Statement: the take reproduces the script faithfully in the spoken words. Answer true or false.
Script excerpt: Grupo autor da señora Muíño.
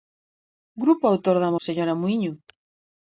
true